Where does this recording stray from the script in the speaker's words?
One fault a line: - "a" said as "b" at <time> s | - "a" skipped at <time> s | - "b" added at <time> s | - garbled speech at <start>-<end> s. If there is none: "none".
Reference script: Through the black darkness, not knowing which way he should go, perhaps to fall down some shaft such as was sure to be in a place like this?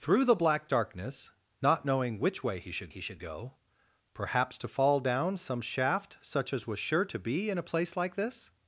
- "he should" added at 2.9 s